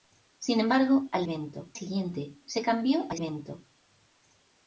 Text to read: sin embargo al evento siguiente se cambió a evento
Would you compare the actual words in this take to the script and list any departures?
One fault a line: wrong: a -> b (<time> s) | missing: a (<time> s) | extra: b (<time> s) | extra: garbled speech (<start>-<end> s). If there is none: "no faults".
no faults